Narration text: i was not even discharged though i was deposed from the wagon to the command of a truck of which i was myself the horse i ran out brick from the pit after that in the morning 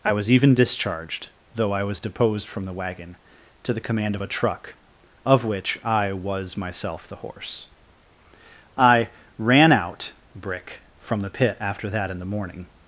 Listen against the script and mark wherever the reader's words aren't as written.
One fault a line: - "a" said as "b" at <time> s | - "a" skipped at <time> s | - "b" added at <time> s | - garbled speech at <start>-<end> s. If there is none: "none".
- "not" skipped at 0.3 s